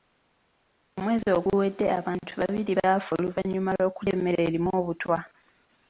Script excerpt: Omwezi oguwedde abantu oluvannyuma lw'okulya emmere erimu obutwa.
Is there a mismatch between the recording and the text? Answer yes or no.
yes